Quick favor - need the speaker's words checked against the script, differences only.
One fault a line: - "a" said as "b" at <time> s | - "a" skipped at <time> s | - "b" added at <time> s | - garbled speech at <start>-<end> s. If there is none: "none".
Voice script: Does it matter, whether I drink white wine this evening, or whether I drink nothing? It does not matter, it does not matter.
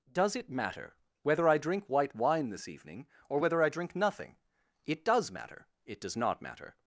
- "not" skipped at 5.3 s